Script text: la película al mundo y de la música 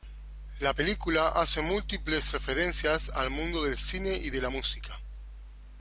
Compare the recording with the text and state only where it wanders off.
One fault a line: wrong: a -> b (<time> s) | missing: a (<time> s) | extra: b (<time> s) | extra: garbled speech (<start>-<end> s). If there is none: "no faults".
extra: hace múltiples referencias (1.3 s)
extra: del cine (3.6 s)